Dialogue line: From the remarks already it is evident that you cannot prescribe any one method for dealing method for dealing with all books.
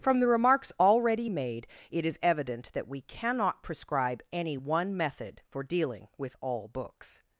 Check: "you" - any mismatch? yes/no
yes